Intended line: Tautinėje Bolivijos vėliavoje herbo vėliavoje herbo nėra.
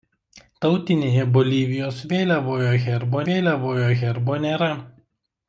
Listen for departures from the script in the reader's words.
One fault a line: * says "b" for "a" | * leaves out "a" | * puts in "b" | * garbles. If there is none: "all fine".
all fine